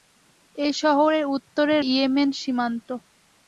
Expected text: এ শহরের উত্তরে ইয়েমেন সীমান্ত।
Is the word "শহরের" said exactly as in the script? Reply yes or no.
yes